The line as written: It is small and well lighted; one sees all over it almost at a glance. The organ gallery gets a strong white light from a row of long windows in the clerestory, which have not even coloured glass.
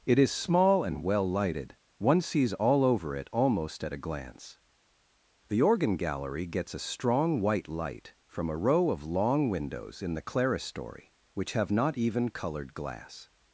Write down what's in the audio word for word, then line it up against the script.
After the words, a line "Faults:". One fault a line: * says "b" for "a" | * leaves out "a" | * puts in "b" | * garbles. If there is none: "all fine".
It is small and well lighted; one sees all over it almost at a glance. The organ gallery gets a strong white light from a row of long windows in the clerestory, which have not even coloured glass.
Faults:
all fine